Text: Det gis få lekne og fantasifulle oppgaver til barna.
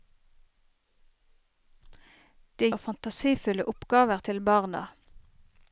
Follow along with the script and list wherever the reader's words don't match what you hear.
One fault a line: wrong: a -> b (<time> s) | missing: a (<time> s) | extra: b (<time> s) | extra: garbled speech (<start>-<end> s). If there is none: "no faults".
missing: gis få lekne (2.7 s)